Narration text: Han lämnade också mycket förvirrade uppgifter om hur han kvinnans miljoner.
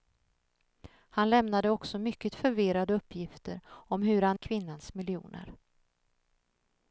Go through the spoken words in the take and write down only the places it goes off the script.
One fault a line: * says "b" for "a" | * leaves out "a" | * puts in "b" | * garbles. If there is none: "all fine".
all fine